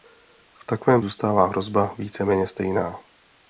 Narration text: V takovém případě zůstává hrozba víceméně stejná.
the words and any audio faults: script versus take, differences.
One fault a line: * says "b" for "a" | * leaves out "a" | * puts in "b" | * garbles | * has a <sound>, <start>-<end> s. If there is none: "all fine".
* leaves out "případě"